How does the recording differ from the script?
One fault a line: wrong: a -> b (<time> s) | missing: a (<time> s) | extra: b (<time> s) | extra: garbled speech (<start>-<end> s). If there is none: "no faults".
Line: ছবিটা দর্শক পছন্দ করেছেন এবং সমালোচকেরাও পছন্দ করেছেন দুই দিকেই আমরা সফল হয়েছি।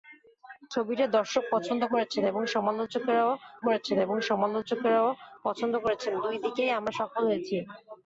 extra: করেছেন এবং সমালোচকেরাও (3.7 s)